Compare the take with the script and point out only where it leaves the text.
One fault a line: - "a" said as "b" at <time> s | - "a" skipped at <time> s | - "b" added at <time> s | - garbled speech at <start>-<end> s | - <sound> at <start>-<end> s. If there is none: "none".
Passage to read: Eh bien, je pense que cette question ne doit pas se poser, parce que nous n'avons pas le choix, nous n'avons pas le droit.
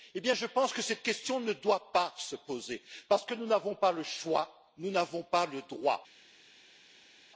none